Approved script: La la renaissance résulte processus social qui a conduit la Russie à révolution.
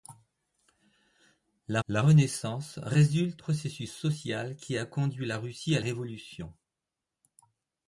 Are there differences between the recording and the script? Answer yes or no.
no